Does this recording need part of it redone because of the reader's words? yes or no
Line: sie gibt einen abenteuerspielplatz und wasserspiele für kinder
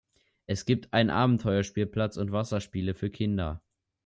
yes